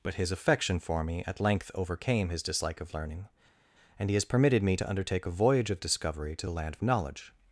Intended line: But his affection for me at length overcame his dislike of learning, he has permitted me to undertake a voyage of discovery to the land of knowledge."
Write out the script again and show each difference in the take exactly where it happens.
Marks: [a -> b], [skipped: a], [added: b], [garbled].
But his affection for me at length overcame his dislike of learning, [added: and] he has permitted me to undertake a voyage of discovery to the land of knowledge."